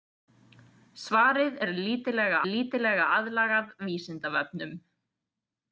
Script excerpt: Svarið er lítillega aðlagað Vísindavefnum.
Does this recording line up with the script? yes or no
no